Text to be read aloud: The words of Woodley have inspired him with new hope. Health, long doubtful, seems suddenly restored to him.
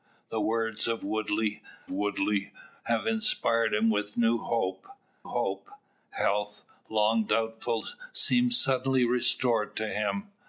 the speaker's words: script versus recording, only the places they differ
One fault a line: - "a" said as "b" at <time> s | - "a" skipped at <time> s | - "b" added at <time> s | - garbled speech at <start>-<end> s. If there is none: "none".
- "Woodley" added at 1.9 s
- "hope" added at 5.2 s